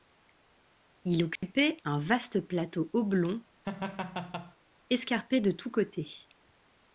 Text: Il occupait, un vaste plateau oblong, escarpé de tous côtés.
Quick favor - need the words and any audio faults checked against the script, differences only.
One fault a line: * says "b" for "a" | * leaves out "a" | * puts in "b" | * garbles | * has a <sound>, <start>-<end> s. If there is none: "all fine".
* has a dropout, 1.4-1.4 s
* has a laugh, 3.6-4.6 s